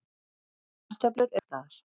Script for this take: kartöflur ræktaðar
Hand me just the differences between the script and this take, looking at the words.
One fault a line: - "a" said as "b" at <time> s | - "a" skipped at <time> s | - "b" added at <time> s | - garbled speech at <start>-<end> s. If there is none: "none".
none